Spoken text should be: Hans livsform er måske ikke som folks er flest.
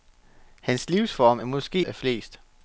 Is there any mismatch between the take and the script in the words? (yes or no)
yes